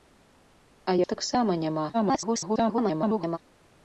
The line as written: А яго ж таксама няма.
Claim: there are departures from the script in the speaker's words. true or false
true